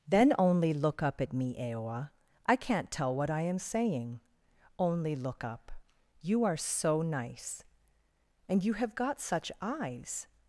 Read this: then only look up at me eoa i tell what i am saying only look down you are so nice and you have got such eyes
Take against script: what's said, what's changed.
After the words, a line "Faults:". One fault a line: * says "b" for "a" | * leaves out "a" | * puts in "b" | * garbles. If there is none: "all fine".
then only look up at me eoa i can't tell what i am saying only look up you are so nice and you have got such eyes
Faults:
* puts in "can't"
* says "up" for "down"